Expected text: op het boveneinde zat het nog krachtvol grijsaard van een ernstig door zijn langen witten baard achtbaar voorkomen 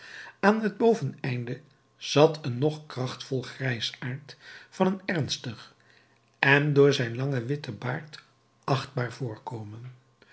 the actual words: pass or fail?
fail